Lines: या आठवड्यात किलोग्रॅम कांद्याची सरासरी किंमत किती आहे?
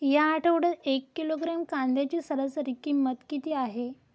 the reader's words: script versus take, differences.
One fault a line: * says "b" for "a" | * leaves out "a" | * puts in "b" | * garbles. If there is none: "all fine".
* puts in "एक"